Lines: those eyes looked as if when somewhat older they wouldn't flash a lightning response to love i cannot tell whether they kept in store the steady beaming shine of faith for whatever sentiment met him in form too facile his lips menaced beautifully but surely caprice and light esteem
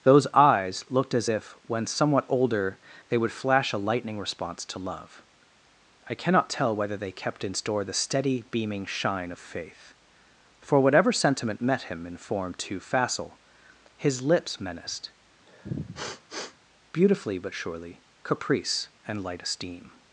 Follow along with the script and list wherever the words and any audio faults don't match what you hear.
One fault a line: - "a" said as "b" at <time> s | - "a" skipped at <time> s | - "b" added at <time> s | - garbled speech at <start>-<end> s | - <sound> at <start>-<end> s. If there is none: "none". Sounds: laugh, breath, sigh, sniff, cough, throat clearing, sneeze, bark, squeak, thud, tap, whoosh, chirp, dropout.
- "wouldn't" said as "would" at 3.2 s
- sniff at 15.5-16.6 s